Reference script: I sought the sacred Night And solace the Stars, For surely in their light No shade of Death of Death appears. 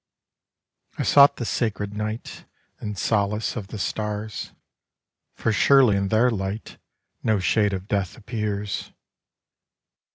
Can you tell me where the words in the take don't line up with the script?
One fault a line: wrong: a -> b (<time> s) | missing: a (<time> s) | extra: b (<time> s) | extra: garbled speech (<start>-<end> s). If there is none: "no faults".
extra: of (3.5 s)
missing: of Death (8.1 s)